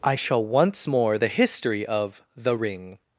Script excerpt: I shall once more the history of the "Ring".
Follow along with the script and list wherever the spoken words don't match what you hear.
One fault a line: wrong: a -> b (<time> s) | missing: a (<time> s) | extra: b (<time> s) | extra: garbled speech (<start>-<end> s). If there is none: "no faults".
no faults